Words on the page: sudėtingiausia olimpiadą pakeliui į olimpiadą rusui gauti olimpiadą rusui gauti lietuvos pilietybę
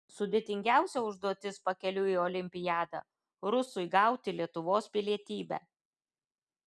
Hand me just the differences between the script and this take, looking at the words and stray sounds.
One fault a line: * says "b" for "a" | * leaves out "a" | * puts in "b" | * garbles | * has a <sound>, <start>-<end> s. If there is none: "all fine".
* says "užduotis" for "olimpiadą"
* leaves out "olimpiadą rusui gauti"